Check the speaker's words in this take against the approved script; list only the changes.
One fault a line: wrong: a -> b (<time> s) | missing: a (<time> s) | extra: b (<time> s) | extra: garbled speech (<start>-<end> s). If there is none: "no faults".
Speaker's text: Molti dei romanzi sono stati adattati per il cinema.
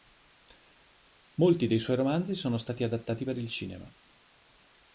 extra: suoi (1.8 s)